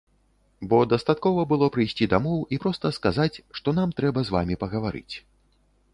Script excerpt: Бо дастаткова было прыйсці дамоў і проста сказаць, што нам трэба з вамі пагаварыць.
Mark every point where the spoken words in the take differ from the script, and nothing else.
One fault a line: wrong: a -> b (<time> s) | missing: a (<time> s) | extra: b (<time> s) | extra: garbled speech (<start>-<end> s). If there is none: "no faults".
no faults